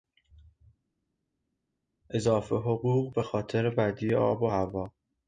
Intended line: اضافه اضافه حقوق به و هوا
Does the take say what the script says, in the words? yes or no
no